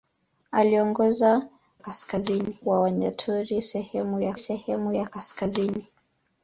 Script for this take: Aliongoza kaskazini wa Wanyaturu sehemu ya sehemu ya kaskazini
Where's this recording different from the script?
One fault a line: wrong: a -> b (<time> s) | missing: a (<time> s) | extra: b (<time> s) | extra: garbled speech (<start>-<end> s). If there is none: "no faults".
no faults